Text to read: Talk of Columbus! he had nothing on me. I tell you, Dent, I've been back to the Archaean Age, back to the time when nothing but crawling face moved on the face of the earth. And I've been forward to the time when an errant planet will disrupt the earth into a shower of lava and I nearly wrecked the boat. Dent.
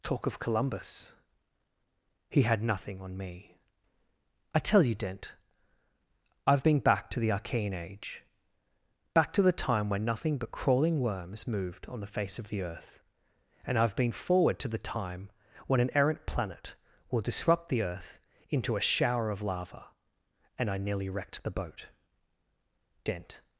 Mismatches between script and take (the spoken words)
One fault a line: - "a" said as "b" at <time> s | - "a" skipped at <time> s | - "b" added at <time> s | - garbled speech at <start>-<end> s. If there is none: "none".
- "face" said as "worms" at 11.0 s